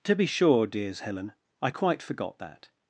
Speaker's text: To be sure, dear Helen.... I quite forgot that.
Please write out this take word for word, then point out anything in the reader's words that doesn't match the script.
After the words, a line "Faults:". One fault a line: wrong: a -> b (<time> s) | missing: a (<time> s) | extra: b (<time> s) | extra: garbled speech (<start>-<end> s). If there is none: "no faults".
To be sure, dears Helen.... I quite forgot that.
Faults:
wrong: dear -> dears (0.7 s)